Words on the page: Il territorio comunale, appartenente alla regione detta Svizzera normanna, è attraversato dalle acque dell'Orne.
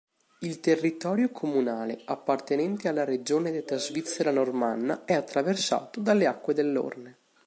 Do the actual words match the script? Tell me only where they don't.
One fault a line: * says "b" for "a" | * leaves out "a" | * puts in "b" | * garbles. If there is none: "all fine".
all fine